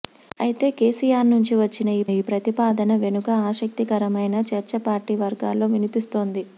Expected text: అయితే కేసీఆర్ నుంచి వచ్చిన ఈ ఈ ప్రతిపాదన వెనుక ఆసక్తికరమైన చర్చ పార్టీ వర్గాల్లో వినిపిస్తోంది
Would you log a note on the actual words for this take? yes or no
no